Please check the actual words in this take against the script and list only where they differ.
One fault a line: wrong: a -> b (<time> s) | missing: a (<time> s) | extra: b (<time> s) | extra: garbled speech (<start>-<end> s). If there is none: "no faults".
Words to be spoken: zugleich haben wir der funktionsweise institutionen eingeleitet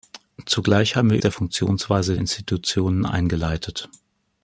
no faults